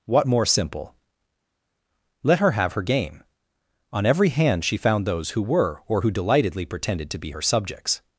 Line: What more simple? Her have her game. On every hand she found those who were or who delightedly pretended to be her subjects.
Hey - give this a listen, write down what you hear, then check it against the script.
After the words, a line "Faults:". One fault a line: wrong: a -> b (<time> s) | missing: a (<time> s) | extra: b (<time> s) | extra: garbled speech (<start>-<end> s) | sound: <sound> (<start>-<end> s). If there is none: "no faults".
What more simple? Let her have her game. On every hand she found those who were or who delightedly pretended to be her subjects.
Faults:
extra: Let (2.2 s)